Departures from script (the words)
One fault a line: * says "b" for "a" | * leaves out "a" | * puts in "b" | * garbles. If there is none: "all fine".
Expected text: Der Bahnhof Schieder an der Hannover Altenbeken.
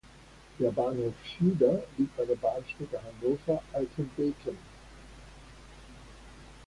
* puts in "liegt"
* puts in "Bahnstrecke"